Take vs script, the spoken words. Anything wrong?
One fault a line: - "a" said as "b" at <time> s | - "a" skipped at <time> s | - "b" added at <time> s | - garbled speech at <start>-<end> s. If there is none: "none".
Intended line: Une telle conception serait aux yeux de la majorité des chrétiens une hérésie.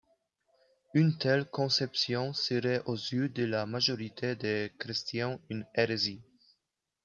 none